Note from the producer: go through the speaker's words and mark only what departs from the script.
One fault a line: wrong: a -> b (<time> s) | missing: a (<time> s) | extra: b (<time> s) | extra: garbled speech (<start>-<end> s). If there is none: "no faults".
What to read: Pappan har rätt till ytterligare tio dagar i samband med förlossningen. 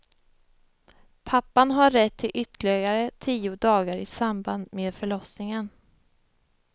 no faults